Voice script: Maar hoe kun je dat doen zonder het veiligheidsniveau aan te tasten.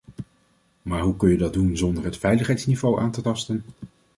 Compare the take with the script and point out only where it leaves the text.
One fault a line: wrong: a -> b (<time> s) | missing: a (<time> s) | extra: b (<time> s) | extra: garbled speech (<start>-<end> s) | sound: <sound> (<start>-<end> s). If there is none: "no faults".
no faults